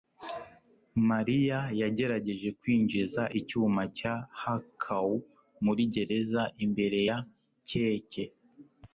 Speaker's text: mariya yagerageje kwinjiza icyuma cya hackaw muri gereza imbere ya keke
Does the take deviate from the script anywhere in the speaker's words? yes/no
no